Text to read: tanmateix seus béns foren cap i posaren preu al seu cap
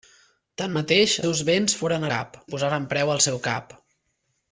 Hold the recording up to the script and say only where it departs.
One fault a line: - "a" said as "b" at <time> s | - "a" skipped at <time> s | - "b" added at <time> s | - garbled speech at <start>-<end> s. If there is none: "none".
none